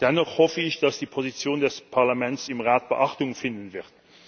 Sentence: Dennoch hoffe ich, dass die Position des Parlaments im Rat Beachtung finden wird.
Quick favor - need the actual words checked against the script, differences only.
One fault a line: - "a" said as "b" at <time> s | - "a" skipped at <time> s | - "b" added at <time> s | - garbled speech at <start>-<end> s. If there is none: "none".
none